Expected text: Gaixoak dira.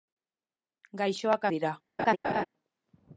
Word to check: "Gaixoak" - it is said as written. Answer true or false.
true